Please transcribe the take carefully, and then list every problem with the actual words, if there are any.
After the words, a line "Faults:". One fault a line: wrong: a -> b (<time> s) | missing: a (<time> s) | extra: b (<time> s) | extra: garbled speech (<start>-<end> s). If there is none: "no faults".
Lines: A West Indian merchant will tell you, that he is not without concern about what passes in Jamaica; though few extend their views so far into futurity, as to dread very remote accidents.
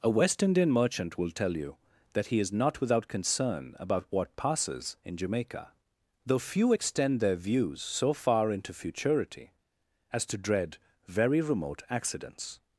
A West Indian merchant will tell you, that he is not without concern about what passes in Jamaica; though few extend their views so far into futurity, as to dread very remote accidents.
Faults:
no faults